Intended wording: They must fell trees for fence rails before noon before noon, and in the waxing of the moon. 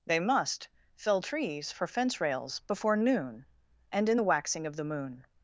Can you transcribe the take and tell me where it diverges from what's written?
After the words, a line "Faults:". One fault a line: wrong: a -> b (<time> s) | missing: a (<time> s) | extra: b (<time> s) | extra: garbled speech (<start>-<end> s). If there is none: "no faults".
They must fell trees for fence rails before noon, and in the waxing of the moon.
Faults:
missing: before noon (3.5 s)